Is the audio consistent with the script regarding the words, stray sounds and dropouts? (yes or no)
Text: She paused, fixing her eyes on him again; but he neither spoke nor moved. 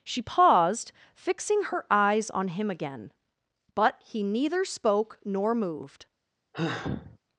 no